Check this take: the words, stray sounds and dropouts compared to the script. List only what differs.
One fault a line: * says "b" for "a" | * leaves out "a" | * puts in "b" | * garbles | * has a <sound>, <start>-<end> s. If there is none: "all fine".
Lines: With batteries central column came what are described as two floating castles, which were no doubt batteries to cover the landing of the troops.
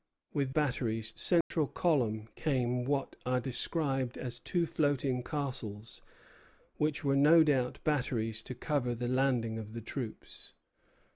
* has a dropout, 1.4-1.5 s